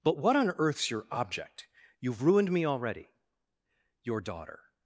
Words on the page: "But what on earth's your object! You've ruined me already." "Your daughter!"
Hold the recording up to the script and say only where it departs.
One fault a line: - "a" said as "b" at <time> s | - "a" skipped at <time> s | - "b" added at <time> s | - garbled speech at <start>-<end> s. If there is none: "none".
none